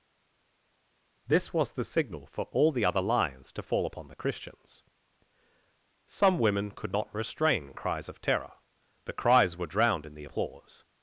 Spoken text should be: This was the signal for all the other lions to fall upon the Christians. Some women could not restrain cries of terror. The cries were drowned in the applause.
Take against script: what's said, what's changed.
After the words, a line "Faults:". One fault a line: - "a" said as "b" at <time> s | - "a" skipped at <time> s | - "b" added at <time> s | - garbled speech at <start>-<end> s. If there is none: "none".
This was the signal for all the other lions to fall upon the Christians. Some women could not restrain cries of terror. The cries were drowned in the applause.
Faults:
none